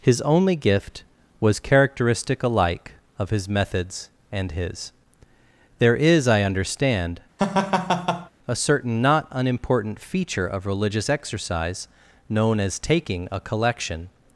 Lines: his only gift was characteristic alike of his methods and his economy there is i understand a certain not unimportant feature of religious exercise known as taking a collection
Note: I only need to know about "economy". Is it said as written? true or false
false